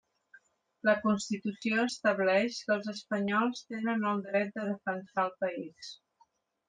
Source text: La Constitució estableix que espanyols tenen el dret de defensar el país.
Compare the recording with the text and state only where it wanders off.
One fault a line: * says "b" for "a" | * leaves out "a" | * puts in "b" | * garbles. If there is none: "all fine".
* puts in "els"